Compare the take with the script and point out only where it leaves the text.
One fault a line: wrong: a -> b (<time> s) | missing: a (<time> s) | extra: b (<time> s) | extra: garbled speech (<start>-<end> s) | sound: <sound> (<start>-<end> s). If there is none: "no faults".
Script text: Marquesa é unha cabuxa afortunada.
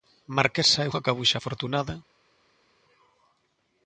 no faults